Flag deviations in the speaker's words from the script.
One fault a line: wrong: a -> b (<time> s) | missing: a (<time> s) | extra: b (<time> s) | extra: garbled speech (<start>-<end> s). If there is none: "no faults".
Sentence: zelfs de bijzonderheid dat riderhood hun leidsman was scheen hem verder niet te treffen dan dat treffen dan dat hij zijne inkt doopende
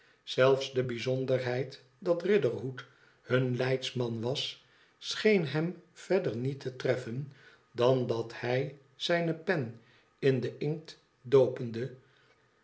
wrong: treffen dan dat hij zijne -> hij zijne pen in den (8.4 s)